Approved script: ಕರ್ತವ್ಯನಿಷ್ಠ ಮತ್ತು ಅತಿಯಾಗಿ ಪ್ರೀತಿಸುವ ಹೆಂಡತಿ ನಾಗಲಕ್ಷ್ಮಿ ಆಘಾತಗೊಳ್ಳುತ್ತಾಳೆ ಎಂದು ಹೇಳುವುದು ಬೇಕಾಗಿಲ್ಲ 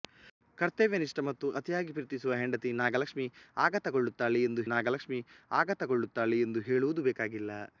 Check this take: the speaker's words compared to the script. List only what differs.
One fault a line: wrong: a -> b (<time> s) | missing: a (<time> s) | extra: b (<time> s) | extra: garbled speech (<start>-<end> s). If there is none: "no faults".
extra: ನಾಗಲಕ್ಷ್ಮಿ ಆಘಾತಗೊಳ್ಳುತ್ತಾಳೆ ಎಂದು (4.7 s)